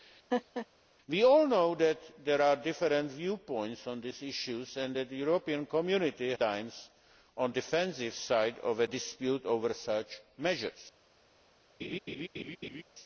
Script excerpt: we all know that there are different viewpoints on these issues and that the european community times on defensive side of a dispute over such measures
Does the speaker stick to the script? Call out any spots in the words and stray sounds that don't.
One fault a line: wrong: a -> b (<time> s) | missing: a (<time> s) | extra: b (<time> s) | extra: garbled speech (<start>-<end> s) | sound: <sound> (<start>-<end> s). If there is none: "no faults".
sound: laugh (0.3-0.7 s)
sound: laugh (11.8-12.8 s)